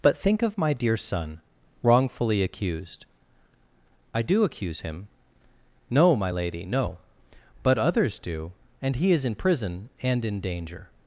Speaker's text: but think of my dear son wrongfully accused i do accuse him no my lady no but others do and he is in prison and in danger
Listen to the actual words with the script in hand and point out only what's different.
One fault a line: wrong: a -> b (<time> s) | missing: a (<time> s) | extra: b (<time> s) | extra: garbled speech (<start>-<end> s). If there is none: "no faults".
no faults